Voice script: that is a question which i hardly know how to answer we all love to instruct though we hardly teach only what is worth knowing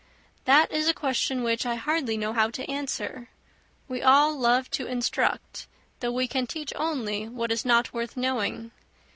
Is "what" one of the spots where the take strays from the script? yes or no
no